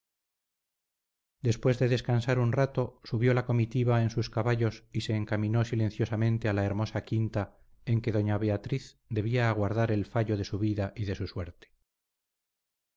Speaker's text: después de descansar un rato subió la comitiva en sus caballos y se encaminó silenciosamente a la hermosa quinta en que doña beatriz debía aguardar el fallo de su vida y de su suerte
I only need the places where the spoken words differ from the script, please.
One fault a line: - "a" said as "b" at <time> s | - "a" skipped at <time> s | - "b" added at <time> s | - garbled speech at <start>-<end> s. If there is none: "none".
none